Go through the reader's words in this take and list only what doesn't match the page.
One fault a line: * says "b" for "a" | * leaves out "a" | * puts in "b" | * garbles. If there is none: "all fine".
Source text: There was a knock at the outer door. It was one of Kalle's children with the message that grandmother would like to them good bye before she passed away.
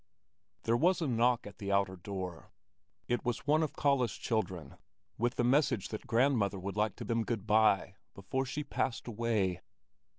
all fine